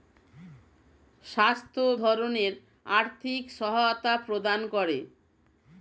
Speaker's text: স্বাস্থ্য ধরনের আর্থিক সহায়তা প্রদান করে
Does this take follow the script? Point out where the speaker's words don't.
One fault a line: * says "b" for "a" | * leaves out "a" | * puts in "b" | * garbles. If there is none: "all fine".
all fine